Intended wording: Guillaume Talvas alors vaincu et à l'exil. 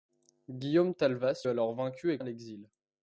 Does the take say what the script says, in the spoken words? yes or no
yes